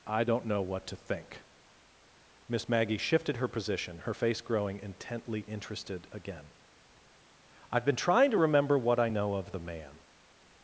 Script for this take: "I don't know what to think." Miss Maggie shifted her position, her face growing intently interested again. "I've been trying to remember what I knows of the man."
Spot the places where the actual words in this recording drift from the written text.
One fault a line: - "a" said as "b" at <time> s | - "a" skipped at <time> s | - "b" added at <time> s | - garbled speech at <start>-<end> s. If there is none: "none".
- "knows" said as "know" at 9.1 s